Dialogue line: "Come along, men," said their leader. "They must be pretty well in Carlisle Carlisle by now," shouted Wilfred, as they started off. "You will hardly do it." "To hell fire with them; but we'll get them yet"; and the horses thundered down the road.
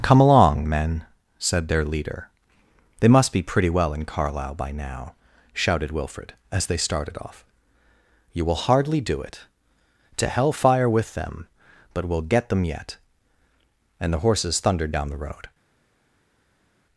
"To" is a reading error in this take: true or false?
false